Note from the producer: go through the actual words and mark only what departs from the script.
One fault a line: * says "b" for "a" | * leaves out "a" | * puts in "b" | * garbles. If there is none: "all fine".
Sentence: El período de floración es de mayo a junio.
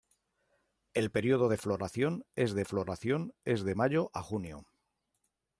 * puts in "floración es de"